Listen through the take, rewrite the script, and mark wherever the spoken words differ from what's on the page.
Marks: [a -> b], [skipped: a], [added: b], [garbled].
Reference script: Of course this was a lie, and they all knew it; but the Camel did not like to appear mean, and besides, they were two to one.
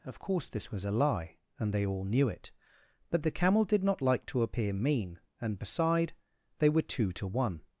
Of course this was a lie, and they all knew it; but the Camel did not like to appear mean, and [besides, -> beside] they were two to one.